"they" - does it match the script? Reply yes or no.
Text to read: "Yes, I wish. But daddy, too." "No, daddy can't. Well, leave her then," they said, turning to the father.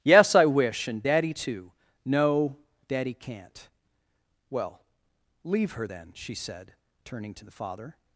no